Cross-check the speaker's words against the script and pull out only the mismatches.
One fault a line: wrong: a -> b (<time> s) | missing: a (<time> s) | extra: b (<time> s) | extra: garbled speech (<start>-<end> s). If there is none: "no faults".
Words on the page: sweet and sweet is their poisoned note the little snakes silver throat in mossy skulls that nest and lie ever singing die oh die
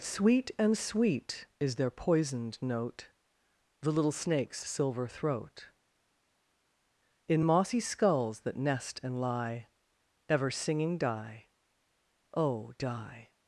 no faults